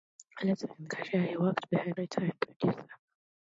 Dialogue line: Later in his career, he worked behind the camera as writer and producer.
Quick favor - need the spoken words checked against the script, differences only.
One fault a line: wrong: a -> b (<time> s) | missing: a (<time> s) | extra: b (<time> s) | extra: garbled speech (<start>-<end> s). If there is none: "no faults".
missing: his (0.9 s)
missing: the camera as (2.0 s)